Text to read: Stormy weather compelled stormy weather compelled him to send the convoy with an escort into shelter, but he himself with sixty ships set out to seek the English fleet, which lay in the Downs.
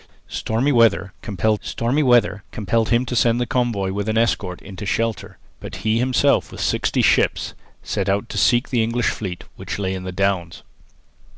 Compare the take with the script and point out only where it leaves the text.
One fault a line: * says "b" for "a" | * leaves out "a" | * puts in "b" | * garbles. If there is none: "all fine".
all fine